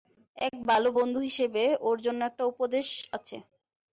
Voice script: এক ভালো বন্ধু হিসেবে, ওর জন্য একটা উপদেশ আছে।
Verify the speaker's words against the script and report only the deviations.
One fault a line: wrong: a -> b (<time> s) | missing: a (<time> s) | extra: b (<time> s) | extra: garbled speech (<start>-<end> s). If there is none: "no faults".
no faults